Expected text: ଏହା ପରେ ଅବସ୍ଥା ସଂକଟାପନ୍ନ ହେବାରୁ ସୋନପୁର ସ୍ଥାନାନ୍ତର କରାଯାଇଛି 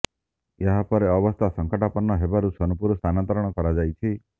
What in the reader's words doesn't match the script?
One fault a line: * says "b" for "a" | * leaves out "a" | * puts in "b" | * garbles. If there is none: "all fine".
all fine